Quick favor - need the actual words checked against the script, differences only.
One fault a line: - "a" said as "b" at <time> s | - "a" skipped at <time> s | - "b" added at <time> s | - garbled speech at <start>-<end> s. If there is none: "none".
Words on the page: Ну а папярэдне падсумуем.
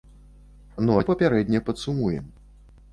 none